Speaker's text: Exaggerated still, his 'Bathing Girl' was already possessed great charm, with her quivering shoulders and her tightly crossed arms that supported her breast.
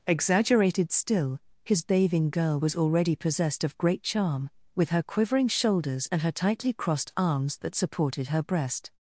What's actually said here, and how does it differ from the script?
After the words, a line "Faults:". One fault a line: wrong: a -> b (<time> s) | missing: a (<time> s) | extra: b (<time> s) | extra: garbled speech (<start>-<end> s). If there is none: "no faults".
Exaggerated still, his 'Bathing Girl' was already possessed of great charm, with her quivering shoulders and her tightly crossed arms that supported her breast.
Faults:
extra: of (3.7 s)